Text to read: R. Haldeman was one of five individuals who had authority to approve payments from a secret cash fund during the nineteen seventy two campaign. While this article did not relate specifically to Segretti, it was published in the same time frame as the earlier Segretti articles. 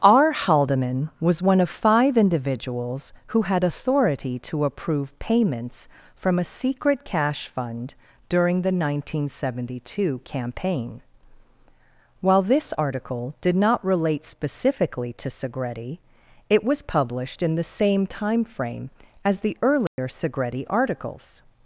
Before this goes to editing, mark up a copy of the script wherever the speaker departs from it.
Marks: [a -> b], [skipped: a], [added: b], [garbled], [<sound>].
R. Haldeman was one of five individuals who had authority to approve payments from a secret cash fund during the nineteen seventy two campaign. While this article did not relate specifically to Segretti, it was published in the same time frame as the earlier [dropout] Segretti articles.